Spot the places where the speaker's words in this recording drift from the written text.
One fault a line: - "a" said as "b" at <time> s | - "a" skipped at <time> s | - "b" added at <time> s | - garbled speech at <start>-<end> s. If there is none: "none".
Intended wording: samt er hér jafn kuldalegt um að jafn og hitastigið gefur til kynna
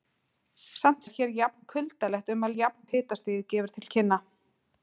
none